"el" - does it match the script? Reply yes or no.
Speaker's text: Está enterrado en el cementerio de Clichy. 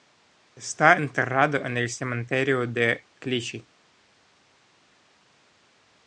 yes